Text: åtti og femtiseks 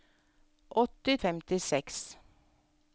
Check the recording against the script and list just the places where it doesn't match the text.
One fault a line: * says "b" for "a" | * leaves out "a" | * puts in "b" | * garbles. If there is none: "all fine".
all fine